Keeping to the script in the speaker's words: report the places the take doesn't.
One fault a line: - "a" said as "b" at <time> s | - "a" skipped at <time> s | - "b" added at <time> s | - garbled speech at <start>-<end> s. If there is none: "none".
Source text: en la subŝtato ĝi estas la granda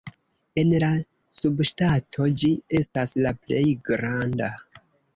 - "plej" added at 3.4 s